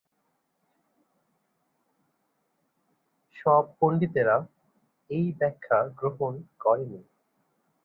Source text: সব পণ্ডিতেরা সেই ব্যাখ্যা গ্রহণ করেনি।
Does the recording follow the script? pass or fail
fail